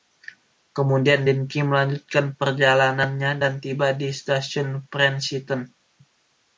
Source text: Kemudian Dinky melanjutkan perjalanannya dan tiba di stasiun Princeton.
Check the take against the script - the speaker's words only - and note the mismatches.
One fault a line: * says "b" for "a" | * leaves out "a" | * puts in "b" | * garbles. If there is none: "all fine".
all fine